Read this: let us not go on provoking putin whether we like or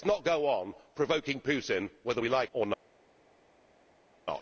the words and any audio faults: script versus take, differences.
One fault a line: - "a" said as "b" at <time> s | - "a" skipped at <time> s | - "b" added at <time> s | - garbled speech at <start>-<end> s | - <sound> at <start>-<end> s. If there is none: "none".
none